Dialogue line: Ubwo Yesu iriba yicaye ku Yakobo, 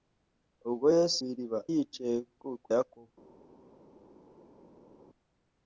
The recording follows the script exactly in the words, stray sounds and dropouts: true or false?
true